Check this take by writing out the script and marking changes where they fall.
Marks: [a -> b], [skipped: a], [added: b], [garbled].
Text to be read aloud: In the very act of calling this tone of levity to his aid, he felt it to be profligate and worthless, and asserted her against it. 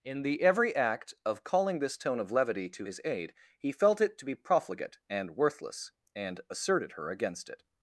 In the [very -> every] act of calling this tone of levity to his aid, he felt it to be profligate and worthless, and asserted her against it.